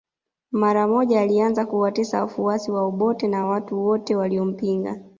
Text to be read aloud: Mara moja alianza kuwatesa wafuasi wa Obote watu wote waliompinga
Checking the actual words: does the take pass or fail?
fail